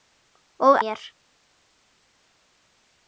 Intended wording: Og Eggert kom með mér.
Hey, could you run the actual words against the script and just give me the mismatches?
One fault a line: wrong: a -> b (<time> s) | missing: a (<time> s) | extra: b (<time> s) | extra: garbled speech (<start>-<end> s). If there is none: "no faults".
missing: Eggert kom með (0.8 s)